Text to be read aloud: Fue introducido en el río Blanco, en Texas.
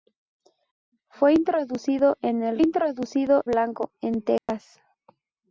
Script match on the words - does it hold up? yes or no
no